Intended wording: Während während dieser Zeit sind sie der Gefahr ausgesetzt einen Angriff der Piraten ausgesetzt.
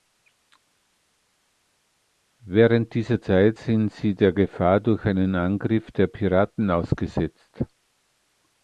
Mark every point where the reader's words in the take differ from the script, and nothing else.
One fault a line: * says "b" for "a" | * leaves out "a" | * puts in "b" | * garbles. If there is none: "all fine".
* leaves out "während"
* says "durch" for "ausgesetzt"